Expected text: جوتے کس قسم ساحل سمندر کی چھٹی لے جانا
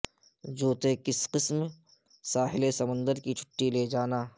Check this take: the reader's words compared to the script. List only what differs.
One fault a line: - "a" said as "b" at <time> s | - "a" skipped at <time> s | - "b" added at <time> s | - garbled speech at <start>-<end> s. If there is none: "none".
none